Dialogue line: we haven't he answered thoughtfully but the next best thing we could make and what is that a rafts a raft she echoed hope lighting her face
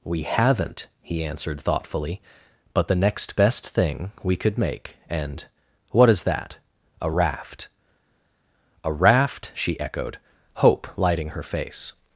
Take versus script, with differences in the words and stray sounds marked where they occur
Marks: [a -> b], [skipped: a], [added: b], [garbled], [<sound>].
we haven't he answered thoughtfully but the next best thing we could make and what is that a [rafts -> raft] a raft she echoed hope lighting her face